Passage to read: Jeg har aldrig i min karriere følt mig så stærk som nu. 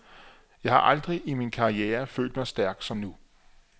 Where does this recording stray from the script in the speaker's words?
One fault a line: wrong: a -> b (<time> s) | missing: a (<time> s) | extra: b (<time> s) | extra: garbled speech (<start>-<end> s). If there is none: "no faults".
missing: så (2.5 s)